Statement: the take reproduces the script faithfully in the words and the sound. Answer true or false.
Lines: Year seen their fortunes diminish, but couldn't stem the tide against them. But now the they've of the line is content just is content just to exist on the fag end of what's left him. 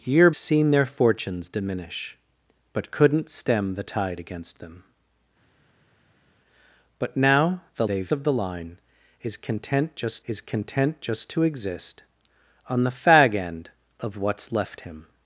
true